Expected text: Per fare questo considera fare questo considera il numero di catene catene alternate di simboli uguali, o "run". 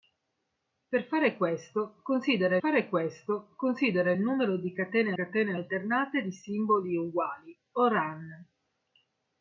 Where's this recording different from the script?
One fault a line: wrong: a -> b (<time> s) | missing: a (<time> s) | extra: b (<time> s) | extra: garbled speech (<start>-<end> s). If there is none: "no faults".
no faults